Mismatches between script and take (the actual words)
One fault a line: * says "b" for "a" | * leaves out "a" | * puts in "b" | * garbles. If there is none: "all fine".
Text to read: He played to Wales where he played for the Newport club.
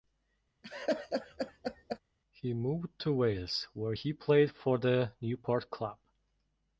* says "moved" for "played"